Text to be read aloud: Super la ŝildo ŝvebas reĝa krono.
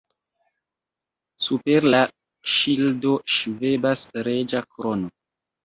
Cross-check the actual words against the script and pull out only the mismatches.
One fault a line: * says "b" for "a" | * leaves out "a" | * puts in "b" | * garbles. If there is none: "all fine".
all fine